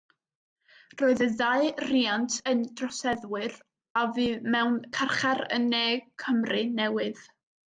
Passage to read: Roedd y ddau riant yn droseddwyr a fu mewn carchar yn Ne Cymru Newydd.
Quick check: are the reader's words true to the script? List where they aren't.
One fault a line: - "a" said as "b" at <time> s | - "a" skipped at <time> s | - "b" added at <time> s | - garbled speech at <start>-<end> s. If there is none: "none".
none